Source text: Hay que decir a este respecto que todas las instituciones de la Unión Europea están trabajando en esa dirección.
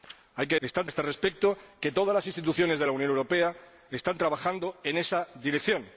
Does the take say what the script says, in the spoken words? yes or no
no